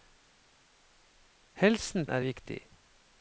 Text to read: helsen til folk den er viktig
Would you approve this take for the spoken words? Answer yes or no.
no